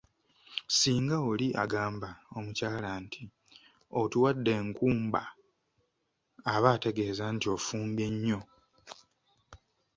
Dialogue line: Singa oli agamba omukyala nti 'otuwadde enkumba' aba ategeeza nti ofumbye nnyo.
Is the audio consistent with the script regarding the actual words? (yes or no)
yes